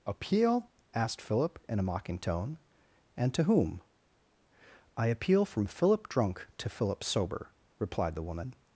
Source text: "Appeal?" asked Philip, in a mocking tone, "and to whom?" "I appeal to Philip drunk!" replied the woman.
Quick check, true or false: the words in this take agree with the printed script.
false